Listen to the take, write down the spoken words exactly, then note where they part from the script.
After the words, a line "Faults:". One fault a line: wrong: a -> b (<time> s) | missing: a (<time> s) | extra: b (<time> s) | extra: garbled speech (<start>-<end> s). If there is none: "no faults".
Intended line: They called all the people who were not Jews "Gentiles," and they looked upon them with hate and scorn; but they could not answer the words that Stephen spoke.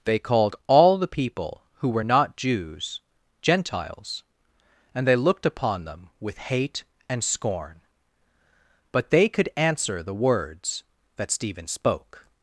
They called all the people who were not Jews "Gentiles," and they looked upon them with hate and scorn; but they could answer the words that Stephen spoke.
Faults:
missing: not (9.5 s)